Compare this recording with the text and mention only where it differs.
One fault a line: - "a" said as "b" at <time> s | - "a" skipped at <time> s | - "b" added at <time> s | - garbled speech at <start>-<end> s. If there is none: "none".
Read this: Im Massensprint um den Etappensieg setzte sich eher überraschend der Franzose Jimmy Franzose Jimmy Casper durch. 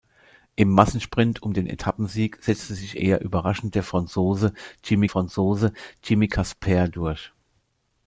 none